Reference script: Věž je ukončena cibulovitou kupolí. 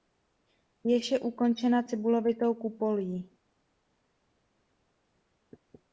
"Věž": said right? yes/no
yes